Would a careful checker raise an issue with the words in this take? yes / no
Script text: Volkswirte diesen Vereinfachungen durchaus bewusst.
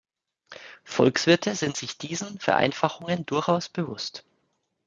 yes